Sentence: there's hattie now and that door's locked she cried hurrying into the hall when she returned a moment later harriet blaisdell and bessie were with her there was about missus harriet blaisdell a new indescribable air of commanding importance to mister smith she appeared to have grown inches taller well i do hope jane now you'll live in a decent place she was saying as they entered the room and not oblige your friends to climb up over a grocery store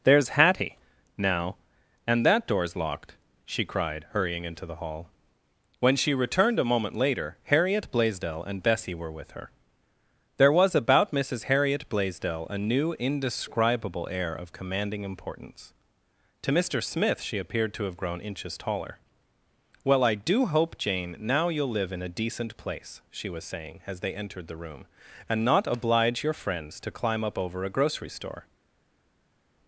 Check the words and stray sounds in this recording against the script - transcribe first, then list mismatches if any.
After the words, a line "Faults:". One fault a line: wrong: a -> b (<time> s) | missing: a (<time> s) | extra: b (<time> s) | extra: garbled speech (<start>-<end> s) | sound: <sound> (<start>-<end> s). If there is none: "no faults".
there's hattie now and that door's locked she cried hurrying into the hall when she returned a moment later harriet blaisdell and bessie were with her there was about missus harriet blaisdell a new indescribable air of commanding importance to mister smith she appeared to have grown inches taller well i do hope jane now you'll live in a decent place she was saying as they entered the room and not oblige your friends to climb up over a grocery store
Faults:
no faults